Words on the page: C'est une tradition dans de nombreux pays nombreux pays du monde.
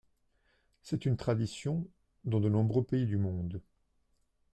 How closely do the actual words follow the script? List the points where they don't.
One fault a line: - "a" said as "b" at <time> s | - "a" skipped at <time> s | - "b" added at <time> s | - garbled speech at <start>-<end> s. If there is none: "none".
- "nombreux pays" skipped at 3.0 s